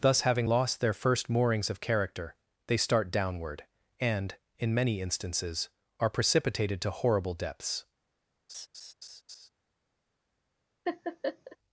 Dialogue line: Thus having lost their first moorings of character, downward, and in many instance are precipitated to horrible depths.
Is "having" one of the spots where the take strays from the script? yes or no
no